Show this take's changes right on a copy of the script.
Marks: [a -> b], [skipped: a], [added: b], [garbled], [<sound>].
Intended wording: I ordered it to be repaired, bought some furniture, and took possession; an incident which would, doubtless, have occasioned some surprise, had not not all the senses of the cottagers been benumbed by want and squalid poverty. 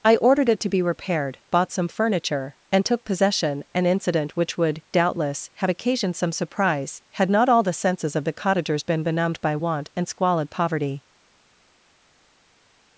I ordered it to be repaired, bought some furniture, and took possession; an incident which would, doubtless, have occasioned some surprise, had not [skipped: not] all the senses of the cottagers been benumbed by want and squalid poverty.